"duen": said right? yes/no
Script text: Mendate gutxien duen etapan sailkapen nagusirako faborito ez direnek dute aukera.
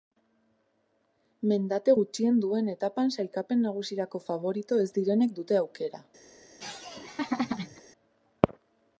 yes